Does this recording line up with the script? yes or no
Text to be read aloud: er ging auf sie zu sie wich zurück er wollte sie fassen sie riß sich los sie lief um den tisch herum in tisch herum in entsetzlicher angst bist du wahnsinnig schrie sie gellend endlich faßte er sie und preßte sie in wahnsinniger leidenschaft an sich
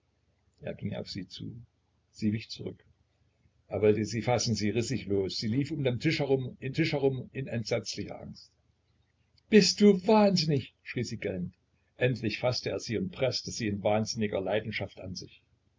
yes